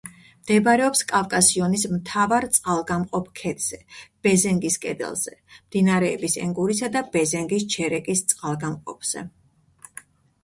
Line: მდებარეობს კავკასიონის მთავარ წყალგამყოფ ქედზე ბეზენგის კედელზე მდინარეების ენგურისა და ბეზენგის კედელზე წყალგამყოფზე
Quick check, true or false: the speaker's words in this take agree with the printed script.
false